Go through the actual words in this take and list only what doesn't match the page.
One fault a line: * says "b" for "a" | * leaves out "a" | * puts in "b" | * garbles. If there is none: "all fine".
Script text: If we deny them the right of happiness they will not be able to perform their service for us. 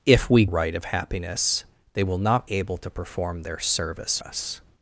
* leaves out "deny them the"
* leaves out "be"
* leaves out "for"